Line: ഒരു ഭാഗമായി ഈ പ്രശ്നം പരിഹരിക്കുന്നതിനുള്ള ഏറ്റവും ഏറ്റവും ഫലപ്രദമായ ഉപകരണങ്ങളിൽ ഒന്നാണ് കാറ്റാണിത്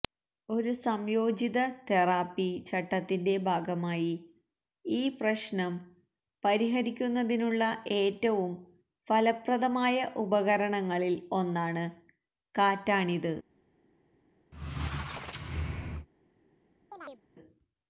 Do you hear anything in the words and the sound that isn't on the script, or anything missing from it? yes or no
yes